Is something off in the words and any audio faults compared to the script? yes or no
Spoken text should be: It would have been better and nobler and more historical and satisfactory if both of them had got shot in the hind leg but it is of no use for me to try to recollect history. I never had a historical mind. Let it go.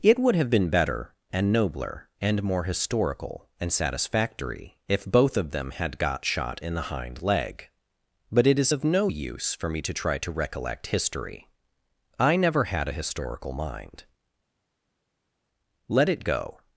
no